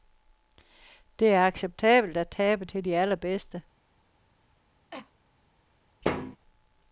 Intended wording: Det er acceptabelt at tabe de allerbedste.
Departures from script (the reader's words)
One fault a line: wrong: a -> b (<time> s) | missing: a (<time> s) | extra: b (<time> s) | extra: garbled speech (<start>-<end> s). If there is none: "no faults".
extra: til (2.6 s)